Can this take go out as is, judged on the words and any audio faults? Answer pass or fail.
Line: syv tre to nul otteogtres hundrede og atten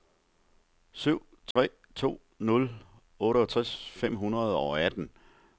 fail